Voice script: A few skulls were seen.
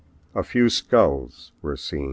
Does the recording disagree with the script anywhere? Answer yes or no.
no